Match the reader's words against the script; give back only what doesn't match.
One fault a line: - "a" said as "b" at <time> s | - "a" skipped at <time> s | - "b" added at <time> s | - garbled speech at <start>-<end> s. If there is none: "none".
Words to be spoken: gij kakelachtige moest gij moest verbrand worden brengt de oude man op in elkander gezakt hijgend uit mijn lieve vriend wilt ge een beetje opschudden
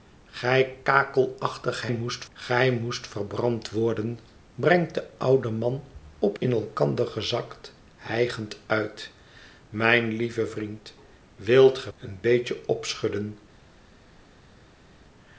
none